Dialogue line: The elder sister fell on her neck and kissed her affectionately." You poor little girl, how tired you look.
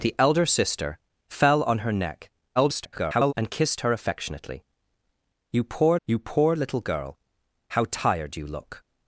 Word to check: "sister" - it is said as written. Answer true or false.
true